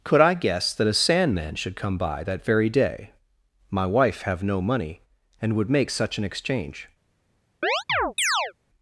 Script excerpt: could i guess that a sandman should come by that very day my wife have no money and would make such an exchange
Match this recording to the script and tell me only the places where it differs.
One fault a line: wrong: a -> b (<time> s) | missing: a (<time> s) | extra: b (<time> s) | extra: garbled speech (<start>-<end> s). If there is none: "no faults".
no faults